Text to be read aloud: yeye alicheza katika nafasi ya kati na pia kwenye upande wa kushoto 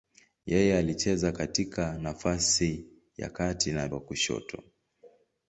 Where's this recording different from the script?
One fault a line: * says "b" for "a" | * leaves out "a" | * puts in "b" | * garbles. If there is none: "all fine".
* leaves out "pia kwenye upande"